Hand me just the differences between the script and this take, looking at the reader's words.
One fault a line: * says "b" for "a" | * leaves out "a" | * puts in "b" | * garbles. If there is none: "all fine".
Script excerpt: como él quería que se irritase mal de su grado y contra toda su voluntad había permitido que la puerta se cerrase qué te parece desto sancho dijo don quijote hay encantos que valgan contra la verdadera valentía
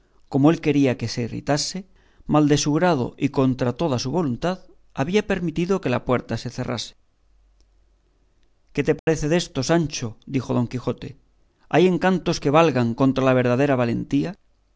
all fine